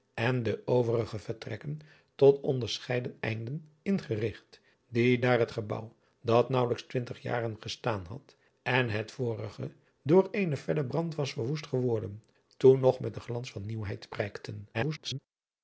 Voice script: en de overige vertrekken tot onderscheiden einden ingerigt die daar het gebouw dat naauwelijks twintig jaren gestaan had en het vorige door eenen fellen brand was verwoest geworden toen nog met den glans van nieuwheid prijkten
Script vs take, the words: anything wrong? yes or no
yes